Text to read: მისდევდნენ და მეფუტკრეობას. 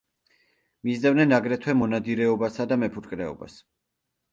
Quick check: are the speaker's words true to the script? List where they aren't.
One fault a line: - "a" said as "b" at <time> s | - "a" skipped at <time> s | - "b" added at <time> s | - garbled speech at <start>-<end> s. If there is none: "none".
- "აგრეთვე მონადირეობასა" added at 1.4 s